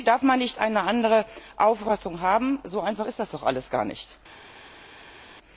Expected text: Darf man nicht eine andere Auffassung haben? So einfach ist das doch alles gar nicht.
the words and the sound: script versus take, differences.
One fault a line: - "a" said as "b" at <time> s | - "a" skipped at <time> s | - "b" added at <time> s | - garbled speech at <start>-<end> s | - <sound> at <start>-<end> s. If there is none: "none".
none